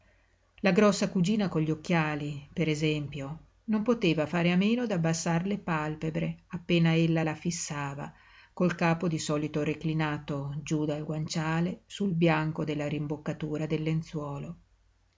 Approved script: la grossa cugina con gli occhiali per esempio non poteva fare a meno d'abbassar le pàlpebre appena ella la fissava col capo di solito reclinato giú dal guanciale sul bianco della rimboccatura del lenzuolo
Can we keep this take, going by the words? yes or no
yes